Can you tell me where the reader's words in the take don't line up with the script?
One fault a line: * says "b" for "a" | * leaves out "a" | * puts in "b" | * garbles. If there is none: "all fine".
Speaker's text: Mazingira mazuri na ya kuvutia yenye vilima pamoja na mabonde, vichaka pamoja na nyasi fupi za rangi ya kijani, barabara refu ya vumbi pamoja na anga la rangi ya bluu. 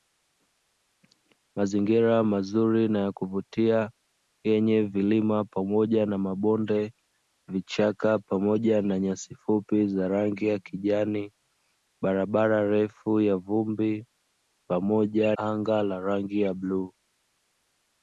* leaves out "na"